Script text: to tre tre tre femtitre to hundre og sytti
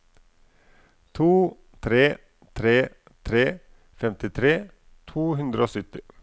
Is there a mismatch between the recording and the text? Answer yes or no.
no